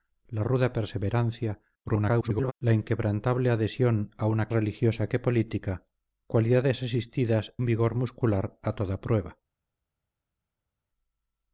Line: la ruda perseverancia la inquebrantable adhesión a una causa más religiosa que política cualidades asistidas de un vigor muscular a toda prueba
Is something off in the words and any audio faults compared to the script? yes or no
yes